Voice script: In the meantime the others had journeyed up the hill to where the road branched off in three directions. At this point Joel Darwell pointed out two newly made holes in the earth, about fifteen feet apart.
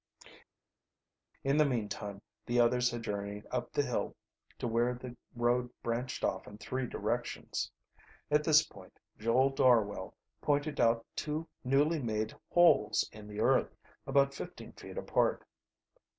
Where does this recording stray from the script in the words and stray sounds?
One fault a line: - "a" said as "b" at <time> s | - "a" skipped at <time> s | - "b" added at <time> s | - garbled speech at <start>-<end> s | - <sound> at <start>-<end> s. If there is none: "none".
none